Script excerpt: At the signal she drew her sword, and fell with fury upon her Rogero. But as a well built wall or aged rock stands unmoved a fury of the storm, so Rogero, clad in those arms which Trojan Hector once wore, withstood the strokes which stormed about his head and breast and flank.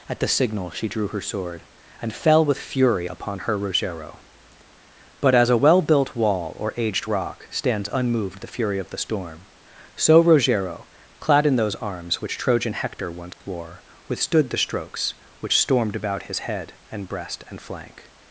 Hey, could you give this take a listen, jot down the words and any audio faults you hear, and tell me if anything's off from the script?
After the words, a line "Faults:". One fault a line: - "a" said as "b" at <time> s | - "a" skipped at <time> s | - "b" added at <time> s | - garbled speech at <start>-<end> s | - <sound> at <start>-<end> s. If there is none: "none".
At the signal she drew her sword, and fell with fury upon her Rogero. But as a well built wall or aged rock stands unmoved the fury of the storm, so Rogero, clad in those arms which Trojan Hector once wore, withstood the strokes which stormed about his head and breast and flank.
Faults:
- "a" said as "the" at 8.4 s
- dropout at 13.3-13.4 s